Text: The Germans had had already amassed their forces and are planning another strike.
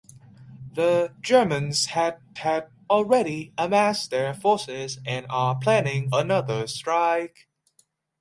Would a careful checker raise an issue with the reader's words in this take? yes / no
no